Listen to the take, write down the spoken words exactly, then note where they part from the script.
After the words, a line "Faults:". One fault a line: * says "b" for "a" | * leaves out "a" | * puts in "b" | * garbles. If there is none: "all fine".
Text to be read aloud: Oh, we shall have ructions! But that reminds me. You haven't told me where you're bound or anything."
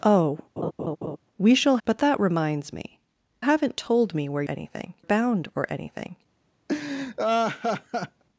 Oh, we shall! But that reminds me. Haven't told me where anything bound or anything."
Faults:
* leaves out "have ructions"
* leaves out "You"
* says "anything" for "you're"